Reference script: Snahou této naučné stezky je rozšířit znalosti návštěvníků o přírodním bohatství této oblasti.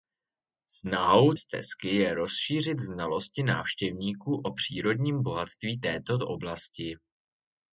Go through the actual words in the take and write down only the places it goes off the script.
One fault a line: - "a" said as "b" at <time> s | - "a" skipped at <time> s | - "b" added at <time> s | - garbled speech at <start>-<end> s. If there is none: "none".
- "této naučné" skipped at 1.3 s